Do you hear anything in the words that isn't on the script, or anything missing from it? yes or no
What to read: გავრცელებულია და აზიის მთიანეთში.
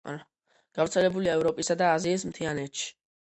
yes